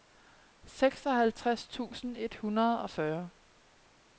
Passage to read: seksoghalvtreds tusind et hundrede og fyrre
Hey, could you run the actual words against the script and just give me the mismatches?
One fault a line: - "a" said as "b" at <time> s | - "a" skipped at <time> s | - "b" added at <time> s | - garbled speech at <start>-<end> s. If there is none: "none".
none